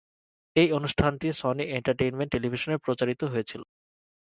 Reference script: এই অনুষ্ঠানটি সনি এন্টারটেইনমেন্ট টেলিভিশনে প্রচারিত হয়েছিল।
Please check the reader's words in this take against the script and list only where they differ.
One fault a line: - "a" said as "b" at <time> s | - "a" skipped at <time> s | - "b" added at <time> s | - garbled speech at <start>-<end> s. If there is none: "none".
none